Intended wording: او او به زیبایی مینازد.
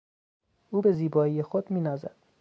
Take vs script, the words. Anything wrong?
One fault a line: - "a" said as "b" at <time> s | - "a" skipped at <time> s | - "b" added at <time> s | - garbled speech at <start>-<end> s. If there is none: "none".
- "او" skipped at 0.8 s
- "خود" added at 1.4 s